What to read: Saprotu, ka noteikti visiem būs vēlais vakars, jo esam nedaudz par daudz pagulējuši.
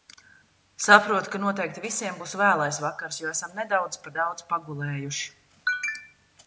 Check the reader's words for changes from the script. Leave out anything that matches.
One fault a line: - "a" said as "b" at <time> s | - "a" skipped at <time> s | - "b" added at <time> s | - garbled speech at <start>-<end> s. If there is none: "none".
none